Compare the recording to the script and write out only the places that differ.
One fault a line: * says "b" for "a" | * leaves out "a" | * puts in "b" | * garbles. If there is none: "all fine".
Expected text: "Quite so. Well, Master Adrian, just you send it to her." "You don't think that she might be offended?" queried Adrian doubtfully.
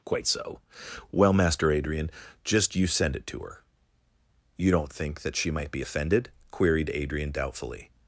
all fine